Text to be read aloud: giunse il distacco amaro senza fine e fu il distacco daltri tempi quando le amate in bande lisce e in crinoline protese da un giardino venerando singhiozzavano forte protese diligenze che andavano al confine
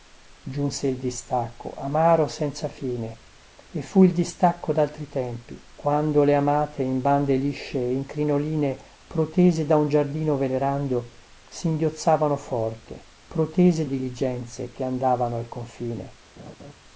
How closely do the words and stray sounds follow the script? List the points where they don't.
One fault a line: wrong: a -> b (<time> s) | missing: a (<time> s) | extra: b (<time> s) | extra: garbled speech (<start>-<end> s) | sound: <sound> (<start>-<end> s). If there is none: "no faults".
sound: laugh (16.4-16.7 s)